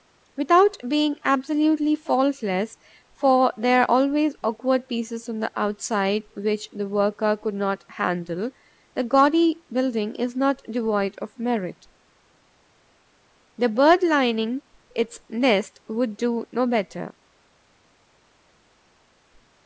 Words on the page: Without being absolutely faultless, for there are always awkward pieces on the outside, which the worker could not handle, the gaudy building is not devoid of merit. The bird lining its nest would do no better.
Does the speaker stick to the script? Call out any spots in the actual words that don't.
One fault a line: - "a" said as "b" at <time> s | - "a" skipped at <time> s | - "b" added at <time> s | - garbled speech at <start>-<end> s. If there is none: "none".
none